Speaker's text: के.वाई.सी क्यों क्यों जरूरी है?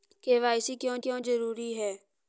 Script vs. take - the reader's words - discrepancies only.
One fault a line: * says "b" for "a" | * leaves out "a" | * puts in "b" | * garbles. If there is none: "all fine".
all fine